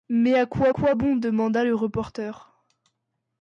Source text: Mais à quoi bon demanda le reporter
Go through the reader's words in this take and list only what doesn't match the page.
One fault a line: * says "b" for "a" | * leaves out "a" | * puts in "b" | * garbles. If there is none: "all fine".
* puts in "quoi"